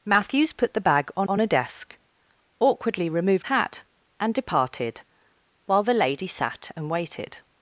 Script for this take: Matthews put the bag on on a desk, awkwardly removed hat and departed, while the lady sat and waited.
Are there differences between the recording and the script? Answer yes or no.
no